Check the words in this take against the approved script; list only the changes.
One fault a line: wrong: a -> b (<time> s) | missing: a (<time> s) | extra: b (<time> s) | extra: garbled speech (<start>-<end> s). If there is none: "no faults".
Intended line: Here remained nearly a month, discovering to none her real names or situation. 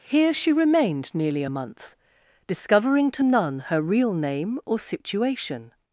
extra: she (0.3 s)
wrong: names -> name (4.1 s)